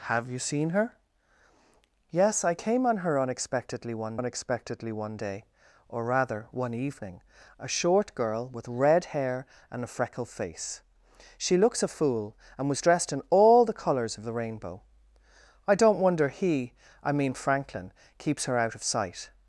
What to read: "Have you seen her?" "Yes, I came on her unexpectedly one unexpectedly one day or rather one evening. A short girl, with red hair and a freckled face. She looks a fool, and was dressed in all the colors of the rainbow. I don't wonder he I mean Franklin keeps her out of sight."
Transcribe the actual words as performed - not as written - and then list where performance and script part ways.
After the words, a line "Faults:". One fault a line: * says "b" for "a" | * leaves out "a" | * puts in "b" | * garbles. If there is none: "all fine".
"Have you seen her?" "Yes, I came on her unexpectedly one unexpectedly one day or rather one evening. A short girl, with red hair and a freckled face. She looks a fool, and was dressed in all the colors of the rainbow. I don't wonder he I mean Franklin keeps her out of sight."
Faults:
all fine